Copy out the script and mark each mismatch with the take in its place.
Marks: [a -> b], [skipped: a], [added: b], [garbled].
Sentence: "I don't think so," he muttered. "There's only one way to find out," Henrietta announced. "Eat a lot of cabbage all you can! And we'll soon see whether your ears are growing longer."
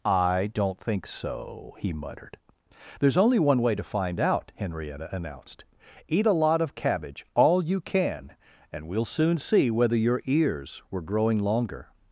"I don't think so," he muttered. "There's only one way to find out," Henrietta announced. "Eat a lot of cabbage all you can! And we'll soon see whether your ears [are -> were] growing longer."